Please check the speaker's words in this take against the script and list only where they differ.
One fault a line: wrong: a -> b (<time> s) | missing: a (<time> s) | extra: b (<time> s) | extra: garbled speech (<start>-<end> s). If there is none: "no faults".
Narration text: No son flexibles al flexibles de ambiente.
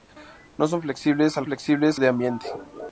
no faults